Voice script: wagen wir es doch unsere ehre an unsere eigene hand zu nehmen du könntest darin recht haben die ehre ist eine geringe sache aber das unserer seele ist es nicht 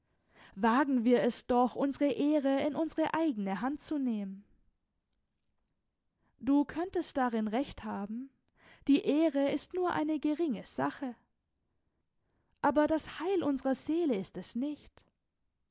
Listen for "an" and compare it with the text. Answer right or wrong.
wrong